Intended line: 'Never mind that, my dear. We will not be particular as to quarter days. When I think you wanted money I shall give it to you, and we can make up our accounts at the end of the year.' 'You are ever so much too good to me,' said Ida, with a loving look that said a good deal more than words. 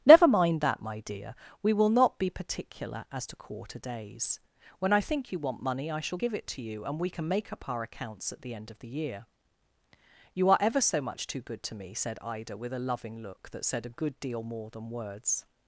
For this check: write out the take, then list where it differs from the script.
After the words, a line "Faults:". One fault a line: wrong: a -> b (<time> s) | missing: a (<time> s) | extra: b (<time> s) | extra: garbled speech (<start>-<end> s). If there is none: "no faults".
'Never mind that, my dear. We will not be particular as to quarter days. When I think you want money I shall give it to you, and we can make up our accounts at the end of the year.' 'You are ever so much too good to me,' said Ida, with a loving look that said a good deal more than words.
Faults:
wrong: wanted -> want (5.4 s)